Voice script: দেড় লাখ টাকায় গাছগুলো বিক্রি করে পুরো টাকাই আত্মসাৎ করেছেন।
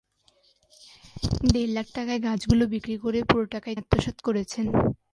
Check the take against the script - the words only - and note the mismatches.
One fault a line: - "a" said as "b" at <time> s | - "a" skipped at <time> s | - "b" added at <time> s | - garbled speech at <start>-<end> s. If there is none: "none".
none